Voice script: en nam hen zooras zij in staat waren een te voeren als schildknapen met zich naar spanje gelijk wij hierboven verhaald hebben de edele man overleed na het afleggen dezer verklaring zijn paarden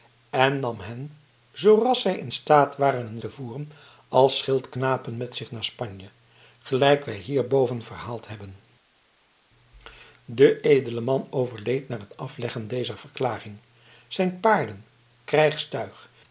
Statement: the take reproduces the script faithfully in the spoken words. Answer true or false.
true